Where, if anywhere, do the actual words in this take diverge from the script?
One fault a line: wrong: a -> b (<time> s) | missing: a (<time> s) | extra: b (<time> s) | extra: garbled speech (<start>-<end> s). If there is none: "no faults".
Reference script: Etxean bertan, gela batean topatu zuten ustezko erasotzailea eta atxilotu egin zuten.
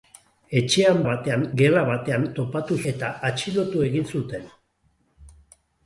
wrong: bertan -> batean (1.1 s)
missing: zuten ustezko erasotzailea (2.8 s)